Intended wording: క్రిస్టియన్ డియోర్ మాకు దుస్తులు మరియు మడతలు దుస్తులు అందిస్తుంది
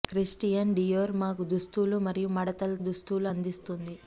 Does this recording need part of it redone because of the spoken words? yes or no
no